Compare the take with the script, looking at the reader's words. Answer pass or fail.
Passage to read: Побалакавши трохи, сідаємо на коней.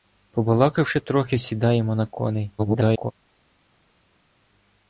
fail